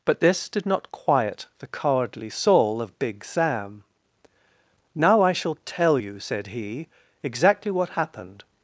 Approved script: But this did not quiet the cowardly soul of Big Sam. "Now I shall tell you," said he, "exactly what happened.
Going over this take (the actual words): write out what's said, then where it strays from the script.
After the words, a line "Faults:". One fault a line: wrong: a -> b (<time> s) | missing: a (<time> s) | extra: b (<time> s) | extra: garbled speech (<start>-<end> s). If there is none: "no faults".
But this did not quiet the cowardly soul of Big Sam. "Now I shall tell you," said he, "exactly what happened.
Faults:
no faults